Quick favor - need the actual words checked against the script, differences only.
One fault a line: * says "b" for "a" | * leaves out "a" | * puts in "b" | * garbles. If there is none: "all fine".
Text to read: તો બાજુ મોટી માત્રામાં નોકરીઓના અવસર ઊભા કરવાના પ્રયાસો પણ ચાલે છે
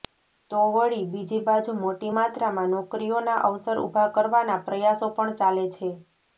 * puts in "વળી બીજી"